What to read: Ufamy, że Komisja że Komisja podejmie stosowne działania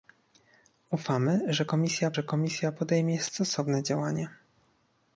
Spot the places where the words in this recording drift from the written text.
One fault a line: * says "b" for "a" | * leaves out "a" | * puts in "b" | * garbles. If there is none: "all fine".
all fine